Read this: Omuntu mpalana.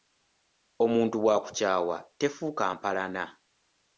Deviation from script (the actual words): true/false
true